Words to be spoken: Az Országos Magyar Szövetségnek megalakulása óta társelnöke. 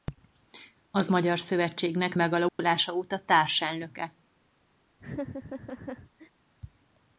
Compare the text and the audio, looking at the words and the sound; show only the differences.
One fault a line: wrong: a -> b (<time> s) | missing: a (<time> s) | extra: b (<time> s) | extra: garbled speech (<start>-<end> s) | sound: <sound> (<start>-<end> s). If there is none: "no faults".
missing: Országos (1.1 s)
sound: dropout (2.5-2.6 s)
sound: laugh (5.0-6.3 s)